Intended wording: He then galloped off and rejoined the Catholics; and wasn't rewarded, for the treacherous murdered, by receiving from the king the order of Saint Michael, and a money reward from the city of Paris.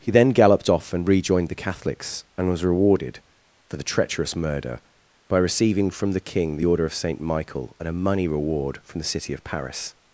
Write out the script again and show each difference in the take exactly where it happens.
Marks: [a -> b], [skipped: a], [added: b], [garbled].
He then galloped off and rejoined the Catholics; and [wasn't -> was] rewarded, for the treacherous [murdered, -> murder] by receiving from the king the order of Saint Michael, and a money reward from the city of Paris.